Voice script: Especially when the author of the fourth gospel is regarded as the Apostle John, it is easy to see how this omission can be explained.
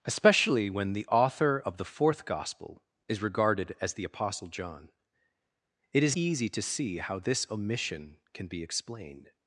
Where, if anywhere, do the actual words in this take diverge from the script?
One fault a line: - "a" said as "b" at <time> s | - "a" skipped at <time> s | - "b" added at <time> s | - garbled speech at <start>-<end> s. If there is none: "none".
none